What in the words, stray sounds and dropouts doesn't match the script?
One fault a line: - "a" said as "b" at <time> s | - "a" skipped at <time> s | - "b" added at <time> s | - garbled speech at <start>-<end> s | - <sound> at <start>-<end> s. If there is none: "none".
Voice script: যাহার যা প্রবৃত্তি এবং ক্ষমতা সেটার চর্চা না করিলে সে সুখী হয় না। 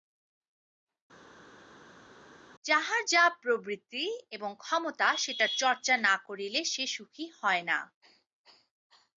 none